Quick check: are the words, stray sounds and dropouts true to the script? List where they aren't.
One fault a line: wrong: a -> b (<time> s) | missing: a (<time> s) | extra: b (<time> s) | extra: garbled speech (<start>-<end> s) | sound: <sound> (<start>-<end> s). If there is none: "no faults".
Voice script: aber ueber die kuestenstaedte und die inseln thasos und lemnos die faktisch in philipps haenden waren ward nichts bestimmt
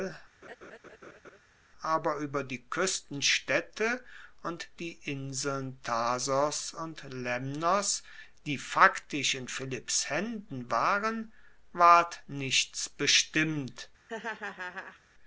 sound: laugh (0.4-1.4 s)
sound: laugh (14.1-15.0 s)